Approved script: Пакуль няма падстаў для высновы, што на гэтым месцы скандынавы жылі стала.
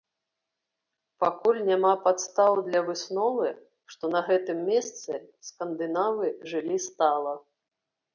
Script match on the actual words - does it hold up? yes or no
yes